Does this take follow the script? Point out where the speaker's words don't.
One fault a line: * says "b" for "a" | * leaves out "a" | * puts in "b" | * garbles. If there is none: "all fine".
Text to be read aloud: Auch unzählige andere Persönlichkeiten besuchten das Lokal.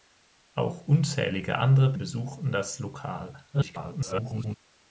* leaves out "Persönlichkeiten"
* garbles